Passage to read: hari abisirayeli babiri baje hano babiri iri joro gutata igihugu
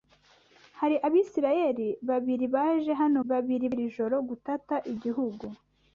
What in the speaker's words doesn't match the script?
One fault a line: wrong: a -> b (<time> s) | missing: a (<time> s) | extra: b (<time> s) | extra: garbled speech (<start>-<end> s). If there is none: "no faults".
no faults